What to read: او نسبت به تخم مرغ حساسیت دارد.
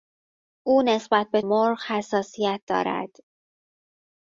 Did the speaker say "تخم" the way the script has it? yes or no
no